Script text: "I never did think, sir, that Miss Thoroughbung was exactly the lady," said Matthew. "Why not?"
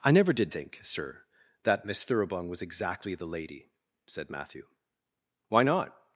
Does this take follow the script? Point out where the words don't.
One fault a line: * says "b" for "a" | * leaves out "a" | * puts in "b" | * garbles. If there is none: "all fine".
all fine